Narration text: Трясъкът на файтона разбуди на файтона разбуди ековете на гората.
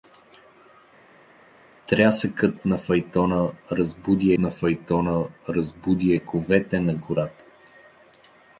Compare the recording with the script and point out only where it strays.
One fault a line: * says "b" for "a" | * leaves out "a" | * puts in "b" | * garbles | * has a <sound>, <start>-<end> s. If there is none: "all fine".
all fine